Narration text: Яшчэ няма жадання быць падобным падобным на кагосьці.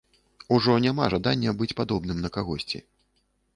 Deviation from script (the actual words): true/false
true